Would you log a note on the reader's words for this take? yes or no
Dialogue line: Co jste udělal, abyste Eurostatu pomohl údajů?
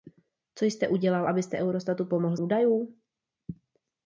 no